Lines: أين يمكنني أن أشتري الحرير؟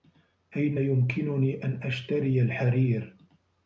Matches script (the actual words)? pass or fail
pass